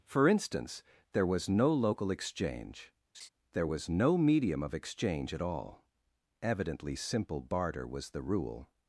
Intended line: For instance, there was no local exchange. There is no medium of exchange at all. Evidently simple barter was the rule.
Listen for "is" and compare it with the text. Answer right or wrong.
wrong